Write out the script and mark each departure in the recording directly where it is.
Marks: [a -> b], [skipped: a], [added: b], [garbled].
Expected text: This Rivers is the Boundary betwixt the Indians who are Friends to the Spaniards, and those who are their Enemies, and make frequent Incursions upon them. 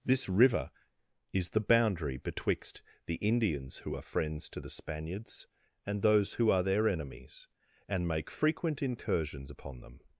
This [Rivers -> River] is the Boundary betwixt the Indians who are Friends to the Spaniards, and those who are their Enemies, and make frequent Incursions upon them.